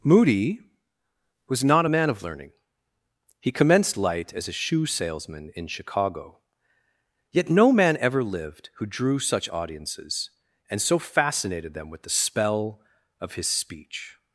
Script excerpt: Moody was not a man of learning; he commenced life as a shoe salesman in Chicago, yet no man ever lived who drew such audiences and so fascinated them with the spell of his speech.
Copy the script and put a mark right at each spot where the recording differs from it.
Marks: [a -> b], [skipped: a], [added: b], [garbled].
Moody was not a man of learning; he commenced [life -> light] as a shoe salesman in Chicago, yet no man ever lived who drew such audiences and so fascinated them with the spell of his speech.